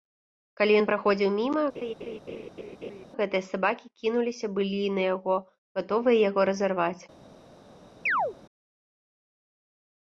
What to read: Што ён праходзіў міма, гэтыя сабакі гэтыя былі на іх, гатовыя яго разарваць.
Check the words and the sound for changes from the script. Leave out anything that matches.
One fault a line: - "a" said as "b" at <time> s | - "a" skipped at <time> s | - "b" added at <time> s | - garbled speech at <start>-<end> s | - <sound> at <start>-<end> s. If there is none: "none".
- "Што" said as "Калі" at 0.6 s
- laugh at 1.7-3.1 s
- "гэтыя" said as "кінуліся" at 4.0 s
- "іх" said as "яго" at 5.1 s
- chirp at 8.1-8.4 s